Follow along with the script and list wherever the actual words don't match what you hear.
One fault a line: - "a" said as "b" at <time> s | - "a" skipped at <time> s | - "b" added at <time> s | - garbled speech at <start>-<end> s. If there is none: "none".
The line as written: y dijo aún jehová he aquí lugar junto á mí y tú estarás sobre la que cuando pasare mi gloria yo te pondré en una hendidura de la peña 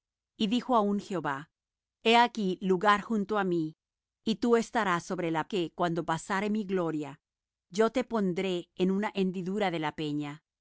none